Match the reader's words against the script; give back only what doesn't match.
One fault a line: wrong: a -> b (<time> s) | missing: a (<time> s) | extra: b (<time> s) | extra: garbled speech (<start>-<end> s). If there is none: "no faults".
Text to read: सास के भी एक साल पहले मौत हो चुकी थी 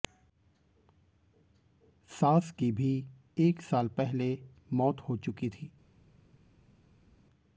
wrong: के -> की (2.5 s)